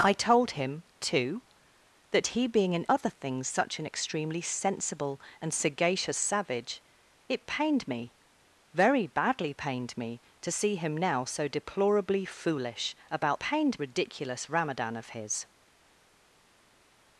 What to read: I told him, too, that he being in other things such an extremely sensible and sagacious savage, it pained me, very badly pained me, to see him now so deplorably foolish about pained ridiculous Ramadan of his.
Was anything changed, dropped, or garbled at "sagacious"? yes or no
no